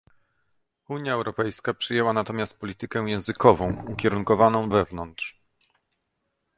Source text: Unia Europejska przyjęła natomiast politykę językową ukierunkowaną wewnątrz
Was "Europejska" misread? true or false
false